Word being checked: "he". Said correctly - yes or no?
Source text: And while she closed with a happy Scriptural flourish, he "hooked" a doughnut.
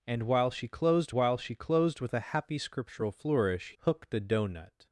no